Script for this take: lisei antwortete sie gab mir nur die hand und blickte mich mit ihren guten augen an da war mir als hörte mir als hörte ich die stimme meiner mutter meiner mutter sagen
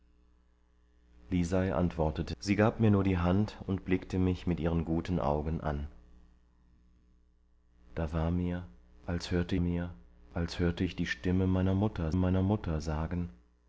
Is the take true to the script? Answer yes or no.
yes